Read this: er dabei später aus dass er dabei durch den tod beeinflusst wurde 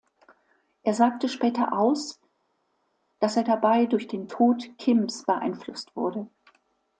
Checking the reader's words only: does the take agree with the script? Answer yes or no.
no